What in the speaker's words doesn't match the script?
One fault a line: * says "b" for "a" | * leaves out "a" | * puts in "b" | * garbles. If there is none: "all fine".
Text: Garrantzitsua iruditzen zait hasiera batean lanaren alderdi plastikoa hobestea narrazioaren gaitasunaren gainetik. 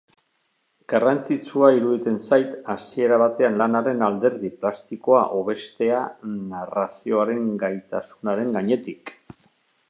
all fine